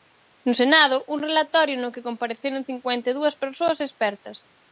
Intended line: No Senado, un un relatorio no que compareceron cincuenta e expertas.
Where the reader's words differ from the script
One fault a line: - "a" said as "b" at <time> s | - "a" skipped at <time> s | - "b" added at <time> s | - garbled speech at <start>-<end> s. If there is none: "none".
- "un" skipped at 1.2 s
- "dúas persoas" added at 3.1 s